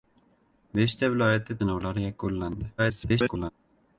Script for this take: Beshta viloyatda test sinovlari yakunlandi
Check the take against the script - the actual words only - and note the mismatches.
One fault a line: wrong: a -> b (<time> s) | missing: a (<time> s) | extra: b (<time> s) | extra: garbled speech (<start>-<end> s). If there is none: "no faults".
missing: test (1.6 s)
extra: garbled speech (2.8-3.5 s)